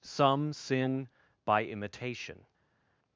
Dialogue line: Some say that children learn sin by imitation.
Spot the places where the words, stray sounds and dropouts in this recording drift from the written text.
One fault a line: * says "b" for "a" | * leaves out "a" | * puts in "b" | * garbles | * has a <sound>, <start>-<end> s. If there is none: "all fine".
* leaves out "say that children learn"